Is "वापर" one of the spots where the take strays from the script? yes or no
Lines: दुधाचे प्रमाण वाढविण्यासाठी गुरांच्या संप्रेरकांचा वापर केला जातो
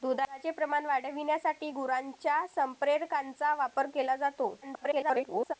no